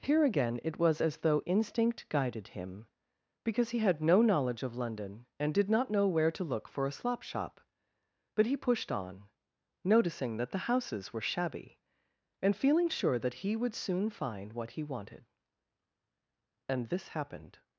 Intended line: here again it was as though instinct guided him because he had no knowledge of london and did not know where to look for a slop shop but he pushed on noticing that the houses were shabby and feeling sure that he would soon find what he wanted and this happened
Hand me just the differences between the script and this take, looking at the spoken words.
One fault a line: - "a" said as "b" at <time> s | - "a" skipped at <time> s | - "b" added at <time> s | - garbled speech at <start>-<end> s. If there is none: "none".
none